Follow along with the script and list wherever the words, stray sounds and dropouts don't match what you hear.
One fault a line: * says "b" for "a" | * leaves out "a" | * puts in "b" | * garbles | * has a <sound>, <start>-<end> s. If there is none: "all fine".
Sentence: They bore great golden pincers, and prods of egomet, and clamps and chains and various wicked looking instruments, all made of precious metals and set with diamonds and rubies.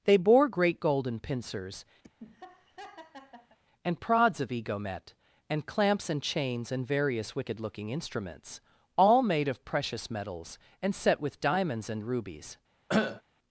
* has a laugh, 2.0-3.6 s
* has a cough, 12.9-13.2 s